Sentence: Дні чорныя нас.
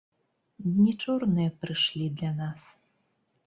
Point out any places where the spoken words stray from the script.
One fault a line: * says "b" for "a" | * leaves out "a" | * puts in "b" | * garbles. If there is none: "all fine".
* puts in "прыйшлі для"